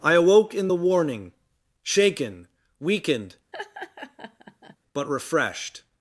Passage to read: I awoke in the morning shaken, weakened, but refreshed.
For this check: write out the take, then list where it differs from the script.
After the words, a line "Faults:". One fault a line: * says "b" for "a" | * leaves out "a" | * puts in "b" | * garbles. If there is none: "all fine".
I awoke in the warning shaken, weakened, but refreshed.
Faults:
* says "warning" for "morning"